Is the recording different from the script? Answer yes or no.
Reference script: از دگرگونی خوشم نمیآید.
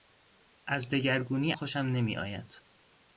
no